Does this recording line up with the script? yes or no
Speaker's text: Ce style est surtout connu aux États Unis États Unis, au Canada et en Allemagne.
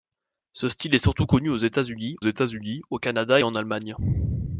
yes